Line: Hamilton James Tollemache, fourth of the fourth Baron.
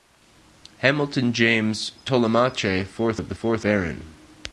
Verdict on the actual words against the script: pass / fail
pass